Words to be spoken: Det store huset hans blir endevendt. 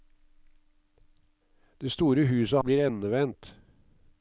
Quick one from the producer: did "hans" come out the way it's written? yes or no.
no